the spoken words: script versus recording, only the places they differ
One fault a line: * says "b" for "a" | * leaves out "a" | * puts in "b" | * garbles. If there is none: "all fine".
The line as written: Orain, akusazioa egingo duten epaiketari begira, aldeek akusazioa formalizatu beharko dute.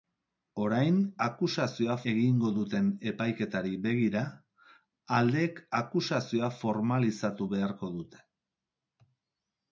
all fine